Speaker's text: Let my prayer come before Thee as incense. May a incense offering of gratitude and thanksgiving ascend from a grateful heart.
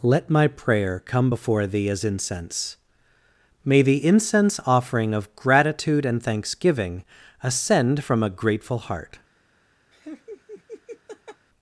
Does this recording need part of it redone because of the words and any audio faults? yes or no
yes